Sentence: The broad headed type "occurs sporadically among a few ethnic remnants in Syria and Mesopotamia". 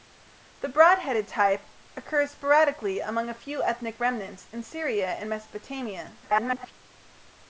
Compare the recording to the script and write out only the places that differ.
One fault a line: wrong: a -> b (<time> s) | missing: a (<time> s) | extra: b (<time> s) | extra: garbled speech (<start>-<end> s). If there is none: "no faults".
extra: garbled speech (6.2-6.7 s)